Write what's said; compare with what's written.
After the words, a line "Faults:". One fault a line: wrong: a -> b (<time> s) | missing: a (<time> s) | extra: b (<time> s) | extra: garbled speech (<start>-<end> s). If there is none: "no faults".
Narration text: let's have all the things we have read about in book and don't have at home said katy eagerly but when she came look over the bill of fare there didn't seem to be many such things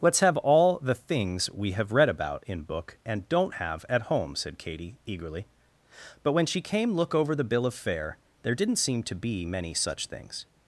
let's have all the things we have read about in book and don't have at home said katy eagerly but when she came look over the bill of fare there didn't seem to be many such things
Faults:
no faults